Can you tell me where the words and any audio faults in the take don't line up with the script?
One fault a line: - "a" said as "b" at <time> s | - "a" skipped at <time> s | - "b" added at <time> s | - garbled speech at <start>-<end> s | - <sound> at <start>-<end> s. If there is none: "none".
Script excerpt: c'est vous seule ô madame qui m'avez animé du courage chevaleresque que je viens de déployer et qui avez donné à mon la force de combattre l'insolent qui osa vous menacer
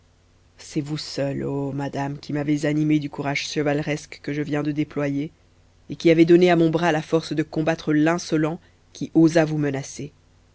- "bras" added at 6.7 s